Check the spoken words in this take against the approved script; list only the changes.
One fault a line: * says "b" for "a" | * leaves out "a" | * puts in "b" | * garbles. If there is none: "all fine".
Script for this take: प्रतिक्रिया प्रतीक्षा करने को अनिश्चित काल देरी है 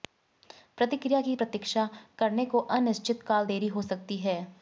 * puts in "की"
* puts in "हो सकती"